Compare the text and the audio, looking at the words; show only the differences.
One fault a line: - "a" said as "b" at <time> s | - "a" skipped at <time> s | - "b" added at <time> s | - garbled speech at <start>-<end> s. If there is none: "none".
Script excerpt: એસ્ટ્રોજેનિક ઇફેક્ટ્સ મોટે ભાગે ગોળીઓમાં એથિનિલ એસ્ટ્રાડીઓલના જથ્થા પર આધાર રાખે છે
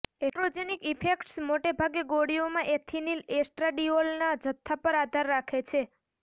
none